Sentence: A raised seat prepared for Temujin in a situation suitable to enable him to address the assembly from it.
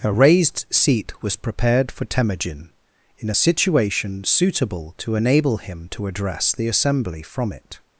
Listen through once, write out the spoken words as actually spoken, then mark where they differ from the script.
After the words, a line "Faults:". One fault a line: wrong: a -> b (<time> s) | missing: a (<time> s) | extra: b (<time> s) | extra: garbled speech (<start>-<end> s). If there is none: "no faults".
A raised seat was prepared for Temujin in a situation suitable to enable him to address the assembly from it.
Faults:
extra: was (1.2 s)